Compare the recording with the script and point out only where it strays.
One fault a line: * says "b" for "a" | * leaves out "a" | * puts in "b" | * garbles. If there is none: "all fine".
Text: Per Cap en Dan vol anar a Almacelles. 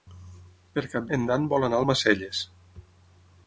all fine